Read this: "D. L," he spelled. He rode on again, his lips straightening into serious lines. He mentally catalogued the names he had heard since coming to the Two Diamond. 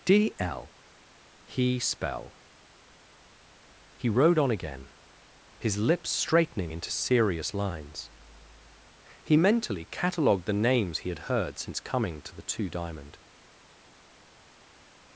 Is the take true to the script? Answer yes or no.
no